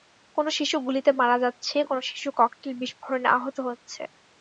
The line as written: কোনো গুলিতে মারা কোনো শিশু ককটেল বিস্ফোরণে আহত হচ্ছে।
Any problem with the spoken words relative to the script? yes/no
yes